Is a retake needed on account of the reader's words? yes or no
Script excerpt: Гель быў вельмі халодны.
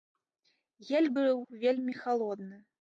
no